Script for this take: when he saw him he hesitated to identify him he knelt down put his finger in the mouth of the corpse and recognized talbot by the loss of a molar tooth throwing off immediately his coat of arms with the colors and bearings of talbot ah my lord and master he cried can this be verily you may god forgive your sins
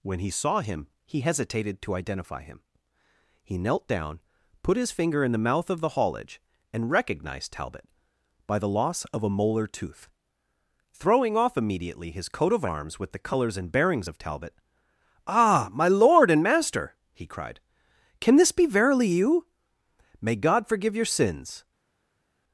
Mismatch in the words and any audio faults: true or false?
true